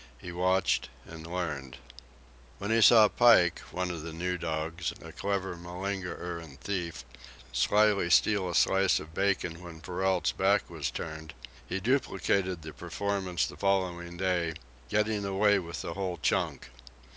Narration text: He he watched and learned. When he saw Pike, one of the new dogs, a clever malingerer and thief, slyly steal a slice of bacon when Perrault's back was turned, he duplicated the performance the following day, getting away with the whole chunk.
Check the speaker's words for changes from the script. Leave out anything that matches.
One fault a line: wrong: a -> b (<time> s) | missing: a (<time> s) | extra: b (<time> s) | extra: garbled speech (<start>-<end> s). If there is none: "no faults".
missing: he (0.3 s)